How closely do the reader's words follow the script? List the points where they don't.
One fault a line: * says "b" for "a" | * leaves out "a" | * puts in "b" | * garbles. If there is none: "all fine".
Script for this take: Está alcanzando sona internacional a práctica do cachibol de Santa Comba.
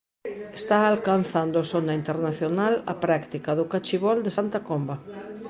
all fine